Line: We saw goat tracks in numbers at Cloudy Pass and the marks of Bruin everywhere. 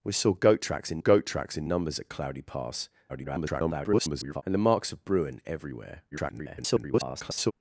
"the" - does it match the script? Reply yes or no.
yes